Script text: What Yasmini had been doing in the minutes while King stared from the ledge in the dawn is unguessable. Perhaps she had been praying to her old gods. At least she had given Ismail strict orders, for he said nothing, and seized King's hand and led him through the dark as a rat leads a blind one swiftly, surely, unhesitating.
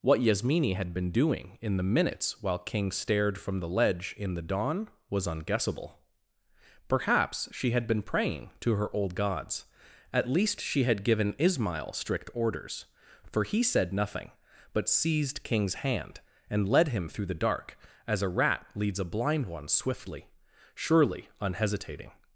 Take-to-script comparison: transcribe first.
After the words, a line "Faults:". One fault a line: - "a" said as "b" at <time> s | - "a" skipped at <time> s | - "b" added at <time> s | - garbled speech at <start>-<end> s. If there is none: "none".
What Yasmini had been doing in the minutes while King stared from the ledge in the dawn was unguessable. Perhaps she had been praying to her old gods. At least she had given Ismail strict orders, for he said nothing, but seized King's hand and led him through the dark as a rat leads a blind one swiftly, surely, unhesitating.
Faults:
- "is" said as "was" at 5.1 s
- "and" said as "but" at 14.7 s